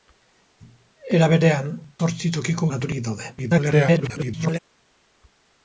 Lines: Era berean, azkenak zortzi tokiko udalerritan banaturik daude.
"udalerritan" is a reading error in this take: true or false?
true